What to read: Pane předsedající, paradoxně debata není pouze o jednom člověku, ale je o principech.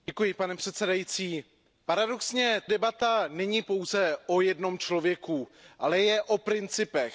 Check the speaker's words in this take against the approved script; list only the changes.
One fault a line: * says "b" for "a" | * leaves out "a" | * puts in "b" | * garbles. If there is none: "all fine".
all fine